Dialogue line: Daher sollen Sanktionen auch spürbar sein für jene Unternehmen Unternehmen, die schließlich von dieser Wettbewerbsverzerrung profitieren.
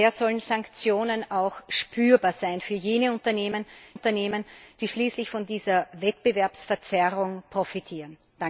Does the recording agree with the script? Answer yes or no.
yes